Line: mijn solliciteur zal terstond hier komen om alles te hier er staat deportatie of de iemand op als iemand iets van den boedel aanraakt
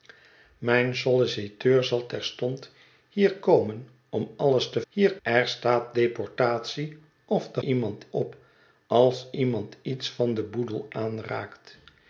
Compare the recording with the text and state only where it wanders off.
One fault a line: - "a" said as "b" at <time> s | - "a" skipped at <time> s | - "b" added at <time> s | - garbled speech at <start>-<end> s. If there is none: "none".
none